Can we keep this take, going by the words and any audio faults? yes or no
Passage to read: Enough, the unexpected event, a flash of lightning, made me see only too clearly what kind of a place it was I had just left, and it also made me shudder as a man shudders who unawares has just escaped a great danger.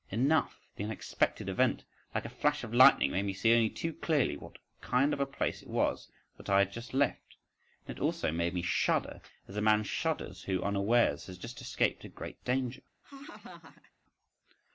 no